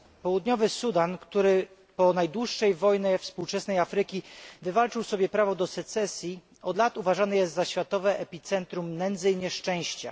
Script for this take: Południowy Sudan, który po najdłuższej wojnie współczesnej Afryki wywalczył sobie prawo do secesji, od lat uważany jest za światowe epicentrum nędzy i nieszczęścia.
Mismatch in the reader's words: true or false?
false